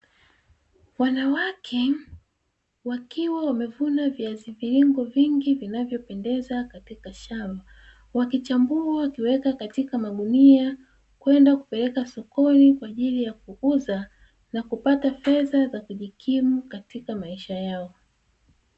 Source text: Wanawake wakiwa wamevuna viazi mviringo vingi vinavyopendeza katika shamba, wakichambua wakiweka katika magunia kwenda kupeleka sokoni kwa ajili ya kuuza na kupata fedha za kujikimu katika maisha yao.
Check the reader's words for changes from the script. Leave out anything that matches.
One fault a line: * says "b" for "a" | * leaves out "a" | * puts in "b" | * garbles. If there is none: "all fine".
all fine